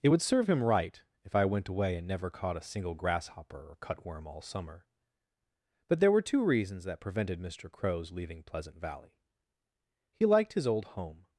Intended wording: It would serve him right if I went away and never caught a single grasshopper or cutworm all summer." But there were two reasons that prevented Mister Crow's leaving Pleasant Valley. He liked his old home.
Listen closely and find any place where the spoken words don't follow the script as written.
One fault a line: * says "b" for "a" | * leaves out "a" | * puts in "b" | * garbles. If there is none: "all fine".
all fine